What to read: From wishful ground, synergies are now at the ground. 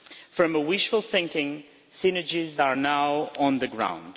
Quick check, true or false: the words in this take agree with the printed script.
false